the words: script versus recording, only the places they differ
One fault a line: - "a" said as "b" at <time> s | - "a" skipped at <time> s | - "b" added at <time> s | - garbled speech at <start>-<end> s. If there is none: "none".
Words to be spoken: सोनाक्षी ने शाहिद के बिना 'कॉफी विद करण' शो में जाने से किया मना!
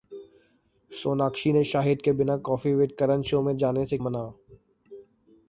- "किया" skipped at 4.0 s